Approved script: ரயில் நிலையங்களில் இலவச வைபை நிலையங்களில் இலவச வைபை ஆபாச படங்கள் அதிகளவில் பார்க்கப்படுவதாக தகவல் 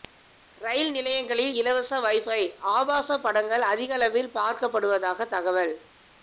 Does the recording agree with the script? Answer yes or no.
no